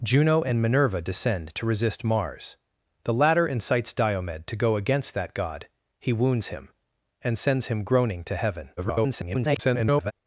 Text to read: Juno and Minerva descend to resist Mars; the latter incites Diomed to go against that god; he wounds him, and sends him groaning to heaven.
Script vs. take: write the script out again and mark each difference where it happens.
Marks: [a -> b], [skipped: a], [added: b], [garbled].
Juno and Minerva descend to resist Mars; the latter incites Diomed to go against that god; he wounds him, and sends him groaning to heaven. [garbled]